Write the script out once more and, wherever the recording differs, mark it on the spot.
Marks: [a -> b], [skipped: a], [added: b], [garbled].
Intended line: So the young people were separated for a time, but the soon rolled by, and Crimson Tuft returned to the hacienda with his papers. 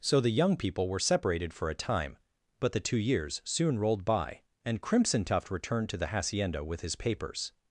So the young people were separated for a time, but the [added: two years] soon rolled by, and Crimson Tuft returned to the hacienda with his papers.